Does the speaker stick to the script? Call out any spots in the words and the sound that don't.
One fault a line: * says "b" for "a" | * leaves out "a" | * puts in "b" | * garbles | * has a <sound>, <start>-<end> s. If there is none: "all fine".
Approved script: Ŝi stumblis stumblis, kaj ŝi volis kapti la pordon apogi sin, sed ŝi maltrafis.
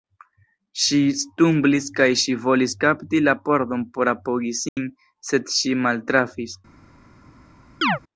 * leaves out "stumblis"
* puts in "por"
* has a dropout, 4.7-4.8 s
* has a chirp, 7.8-8.0 s